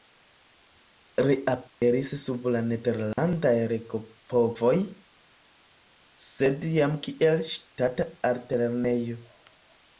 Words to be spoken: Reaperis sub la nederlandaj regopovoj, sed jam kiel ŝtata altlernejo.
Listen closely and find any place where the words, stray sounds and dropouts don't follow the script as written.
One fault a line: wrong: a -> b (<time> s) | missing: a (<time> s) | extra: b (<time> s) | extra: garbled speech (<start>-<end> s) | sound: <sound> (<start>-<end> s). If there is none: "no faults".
sound: dropout (1.7-1.8 s)
sound: dropout (3.1-3.2 s)